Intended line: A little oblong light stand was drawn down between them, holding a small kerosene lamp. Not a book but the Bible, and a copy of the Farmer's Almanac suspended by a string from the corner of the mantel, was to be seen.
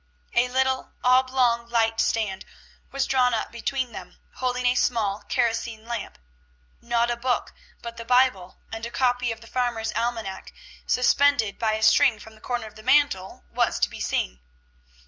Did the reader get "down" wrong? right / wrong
wrong